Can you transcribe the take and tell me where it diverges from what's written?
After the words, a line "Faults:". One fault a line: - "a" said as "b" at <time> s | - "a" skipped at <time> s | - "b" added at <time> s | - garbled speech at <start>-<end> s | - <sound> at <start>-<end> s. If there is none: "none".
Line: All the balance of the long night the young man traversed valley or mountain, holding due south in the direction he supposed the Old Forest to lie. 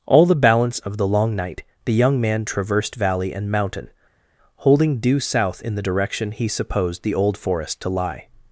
All the balance of the long night the young man traversed valley and mountain, holding due south in the direction he supposed the Old Forest to lie.
Faults:
- "or" said as "and" at 3.3 s